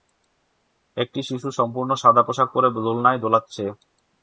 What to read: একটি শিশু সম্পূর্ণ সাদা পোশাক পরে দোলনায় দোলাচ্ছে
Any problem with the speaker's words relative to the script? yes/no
no